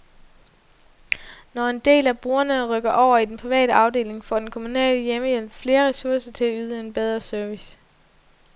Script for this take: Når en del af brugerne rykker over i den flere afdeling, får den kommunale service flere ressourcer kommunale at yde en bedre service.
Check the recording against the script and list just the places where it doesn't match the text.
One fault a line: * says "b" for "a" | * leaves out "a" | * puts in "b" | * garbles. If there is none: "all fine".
* says "private" for "flere"
* says "hjemmehjælp" for "service"
* says "til" for "kommunale"